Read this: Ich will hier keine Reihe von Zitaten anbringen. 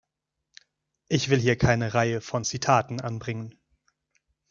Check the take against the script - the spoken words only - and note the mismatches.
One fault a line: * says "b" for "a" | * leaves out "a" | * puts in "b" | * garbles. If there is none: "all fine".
all fine